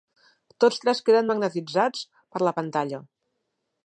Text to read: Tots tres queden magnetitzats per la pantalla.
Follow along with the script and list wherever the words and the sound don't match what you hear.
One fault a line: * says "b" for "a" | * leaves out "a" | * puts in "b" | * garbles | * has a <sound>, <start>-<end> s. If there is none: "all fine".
all fine